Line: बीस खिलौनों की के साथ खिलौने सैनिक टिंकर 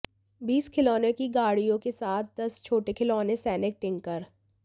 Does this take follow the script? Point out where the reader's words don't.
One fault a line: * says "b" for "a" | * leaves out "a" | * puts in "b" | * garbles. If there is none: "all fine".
* puts in "गाड़ियों"
* puts in "दस छोटे"